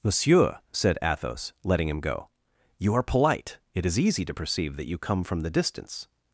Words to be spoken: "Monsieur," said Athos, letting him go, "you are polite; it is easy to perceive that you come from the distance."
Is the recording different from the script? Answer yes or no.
no